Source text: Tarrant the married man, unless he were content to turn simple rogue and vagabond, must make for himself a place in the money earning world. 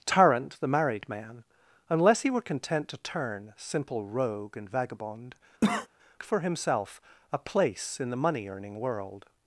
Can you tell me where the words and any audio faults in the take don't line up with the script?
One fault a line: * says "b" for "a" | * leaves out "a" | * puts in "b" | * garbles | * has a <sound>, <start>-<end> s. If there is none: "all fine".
* leaves out "must make"
* has a cough, 5.6-5.9 s